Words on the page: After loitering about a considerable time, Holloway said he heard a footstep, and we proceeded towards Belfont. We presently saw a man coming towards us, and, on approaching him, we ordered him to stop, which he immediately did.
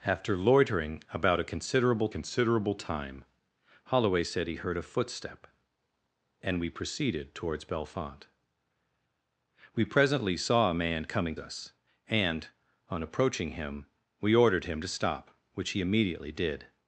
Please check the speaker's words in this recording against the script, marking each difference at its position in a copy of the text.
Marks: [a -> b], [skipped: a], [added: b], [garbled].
After loitering about a considerable [added: considerable] time, Holloway said he heard a footstep, and we proceeded towards Belfont. We presently saw a man coming [skipped: towards] us, and, on approaching him, we ordered him to stop, which he immediately did.